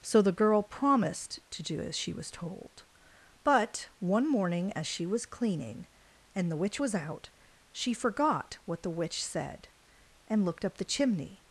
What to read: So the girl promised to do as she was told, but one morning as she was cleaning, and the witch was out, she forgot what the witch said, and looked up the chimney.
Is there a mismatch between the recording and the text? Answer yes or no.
no